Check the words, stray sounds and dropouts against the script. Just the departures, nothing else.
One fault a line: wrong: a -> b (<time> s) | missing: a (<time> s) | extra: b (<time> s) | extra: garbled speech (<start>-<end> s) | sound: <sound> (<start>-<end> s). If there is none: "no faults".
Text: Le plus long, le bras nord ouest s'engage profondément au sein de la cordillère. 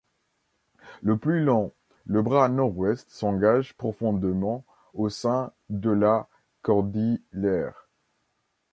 no faults